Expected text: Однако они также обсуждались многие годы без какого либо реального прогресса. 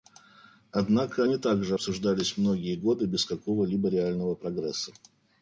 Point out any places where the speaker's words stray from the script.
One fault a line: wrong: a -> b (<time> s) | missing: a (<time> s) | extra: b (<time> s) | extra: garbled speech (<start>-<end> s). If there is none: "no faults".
no faults